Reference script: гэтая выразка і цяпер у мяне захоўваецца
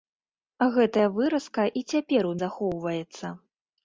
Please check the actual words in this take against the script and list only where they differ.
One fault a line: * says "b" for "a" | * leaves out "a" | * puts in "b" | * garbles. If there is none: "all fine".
* leaves out "мяне"